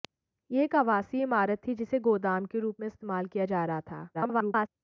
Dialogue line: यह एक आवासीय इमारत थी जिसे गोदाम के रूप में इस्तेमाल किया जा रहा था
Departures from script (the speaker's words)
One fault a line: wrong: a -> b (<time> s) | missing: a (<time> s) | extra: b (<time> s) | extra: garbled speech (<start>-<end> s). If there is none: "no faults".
extra: garbled speech (4.1-4.7 s)